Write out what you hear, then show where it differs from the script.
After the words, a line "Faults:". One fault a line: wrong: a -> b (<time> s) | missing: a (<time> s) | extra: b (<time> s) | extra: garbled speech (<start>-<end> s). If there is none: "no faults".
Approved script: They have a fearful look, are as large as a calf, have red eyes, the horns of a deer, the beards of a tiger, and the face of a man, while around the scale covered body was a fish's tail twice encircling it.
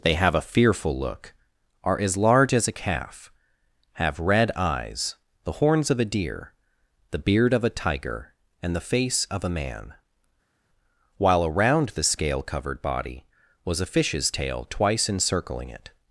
They have a fearful look, are as large as a calf, have red eyes, the horns of a deer, the beard of a tiger, and the face of a man, while around the scale covered body was a fish's tail twice encircling it.
Faults:
wrong: beards -> beard (7.2 s)